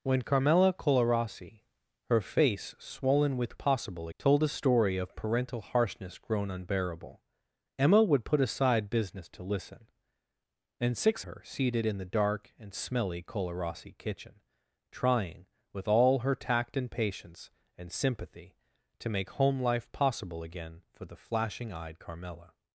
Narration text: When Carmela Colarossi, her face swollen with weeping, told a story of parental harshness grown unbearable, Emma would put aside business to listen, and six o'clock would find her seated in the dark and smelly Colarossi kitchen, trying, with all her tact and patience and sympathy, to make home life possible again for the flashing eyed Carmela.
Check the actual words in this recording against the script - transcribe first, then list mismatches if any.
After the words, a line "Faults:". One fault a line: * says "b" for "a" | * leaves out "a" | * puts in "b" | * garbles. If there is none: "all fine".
When Carmela Colarossi, her face swollen with possible, told a story of parental harshness grown unbearable, Emma would put aside business to listen, and six her seated in the dark and smelly Colarossi kitchen, trying, with all her tact and patience and sympathy, to make home life possible again for the flashing eyed Carmela.
Faults:
* says "possible" for "weeping"
* leaves out "o'clock would find"